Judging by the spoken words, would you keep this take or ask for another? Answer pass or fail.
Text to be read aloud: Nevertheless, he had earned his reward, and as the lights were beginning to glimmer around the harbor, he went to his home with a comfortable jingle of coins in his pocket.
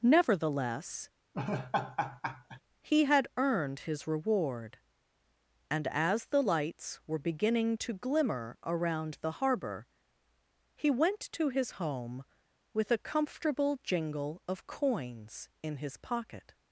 pass